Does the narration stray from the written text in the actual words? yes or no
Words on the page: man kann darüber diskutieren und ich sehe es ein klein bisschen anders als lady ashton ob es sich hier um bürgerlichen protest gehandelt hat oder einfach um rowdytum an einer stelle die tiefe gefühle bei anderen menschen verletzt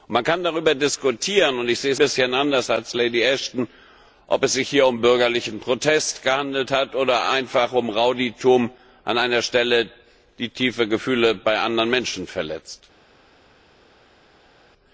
yes